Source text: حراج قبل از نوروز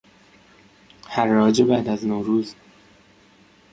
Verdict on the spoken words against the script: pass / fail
fail